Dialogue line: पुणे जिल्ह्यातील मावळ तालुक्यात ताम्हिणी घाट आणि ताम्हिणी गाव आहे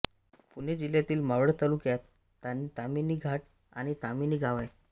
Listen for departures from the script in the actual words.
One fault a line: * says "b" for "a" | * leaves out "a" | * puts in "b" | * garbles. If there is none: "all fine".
all fine